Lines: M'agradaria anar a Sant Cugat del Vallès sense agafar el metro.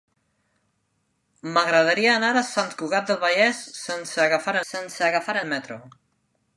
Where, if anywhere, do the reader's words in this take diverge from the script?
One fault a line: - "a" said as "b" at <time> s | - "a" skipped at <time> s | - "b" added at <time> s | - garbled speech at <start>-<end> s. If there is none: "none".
- "sense agafar" added at 4.7 s